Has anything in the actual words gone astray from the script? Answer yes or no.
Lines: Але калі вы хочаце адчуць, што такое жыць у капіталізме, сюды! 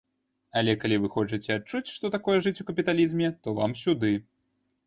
yes